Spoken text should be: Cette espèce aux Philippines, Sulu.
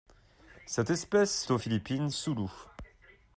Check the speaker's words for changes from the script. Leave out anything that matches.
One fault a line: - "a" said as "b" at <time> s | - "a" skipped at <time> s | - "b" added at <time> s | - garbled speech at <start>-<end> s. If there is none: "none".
none